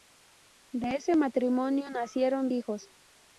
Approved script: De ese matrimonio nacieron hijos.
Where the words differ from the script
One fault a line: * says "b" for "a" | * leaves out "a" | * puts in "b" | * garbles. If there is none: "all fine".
all fine